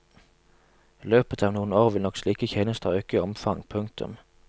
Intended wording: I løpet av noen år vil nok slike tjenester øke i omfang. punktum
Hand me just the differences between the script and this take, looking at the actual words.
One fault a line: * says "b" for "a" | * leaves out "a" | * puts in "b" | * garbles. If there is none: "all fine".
all fine